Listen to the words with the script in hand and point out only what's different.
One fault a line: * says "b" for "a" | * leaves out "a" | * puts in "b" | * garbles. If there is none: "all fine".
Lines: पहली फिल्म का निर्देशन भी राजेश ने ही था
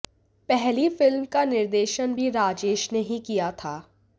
* puts in "किया"